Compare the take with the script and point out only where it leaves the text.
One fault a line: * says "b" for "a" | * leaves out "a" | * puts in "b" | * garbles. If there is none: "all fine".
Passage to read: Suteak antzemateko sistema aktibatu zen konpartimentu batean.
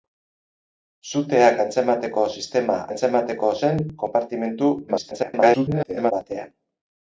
* says "antzemateko" for "aktibatu"
* garbles